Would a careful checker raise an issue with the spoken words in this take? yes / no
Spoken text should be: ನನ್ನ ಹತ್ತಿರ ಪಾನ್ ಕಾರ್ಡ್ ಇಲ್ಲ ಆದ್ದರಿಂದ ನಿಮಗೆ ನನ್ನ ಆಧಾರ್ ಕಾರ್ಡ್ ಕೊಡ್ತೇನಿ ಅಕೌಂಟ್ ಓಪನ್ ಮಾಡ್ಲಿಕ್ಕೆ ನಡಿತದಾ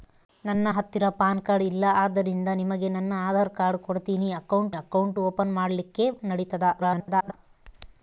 yes